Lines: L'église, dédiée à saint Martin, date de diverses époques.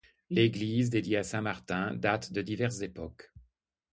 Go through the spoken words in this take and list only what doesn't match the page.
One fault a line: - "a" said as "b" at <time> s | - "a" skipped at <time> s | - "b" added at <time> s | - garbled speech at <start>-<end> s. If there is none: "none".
none